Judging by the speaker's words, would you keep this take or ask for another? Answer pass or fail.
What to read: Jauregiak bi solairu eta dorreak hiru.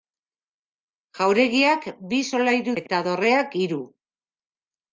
pass